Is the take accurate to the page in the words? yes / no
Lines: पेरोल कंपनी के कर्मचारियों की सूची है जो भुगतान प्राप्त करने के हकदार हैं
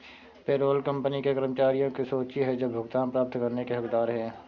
yes